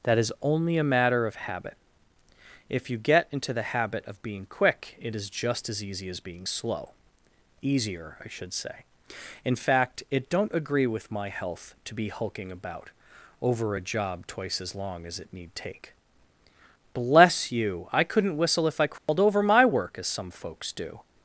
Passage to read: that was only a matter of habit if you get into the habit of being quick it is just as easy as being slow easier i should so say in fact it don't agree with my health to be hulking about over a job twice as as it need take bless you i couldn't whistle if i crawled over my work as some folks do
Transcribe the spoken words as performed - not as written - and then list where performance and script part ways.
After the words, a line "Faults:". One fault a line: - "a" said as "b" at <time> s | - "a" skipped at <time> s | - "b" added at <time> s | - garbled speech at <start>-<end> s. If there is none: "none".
that is only a matter of habit if you get into the habit of being quick it is just as easy as being slow easier i should say in fact it don't agree with my health to be hulking about over a job twice as long as it need take bless you i couldn't whistle if i crawled over my work as some folks do
Faults:
- "was" said as "is" at 0.2 s
- "so" skipped at 8.5 s
- "long" added at 14.8 s